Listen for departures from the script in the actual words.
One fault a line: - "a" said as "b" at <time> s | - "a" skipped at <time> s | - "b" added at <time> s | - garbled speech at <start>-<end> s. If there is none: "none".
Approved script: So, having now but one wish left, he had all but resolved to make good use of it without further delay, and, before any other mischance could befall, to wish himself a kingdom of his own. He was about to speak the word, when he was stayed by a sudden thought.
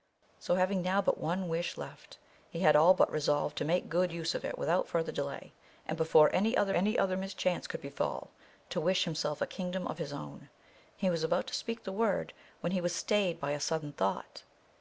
- "any other" added at 6.7 s